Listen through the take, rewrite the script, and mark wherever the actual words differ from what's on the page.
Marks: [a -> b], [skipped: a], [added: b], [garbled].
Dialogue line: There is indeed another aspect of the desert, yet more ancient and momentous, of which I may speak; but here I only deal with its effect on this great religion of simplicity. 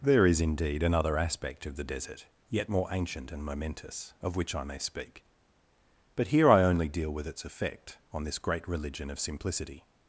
There is indeed another aspect of the desert, yet more ancient and momentous, of which I may speak; but here I only deal with its effect on this great religion of simplicity.